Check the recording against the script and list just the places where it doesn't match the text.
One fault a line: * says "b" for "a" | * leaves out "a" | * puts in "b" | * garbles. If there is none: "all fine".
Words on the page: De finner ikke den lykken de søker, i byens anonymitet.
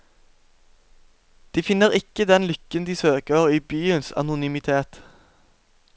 all fine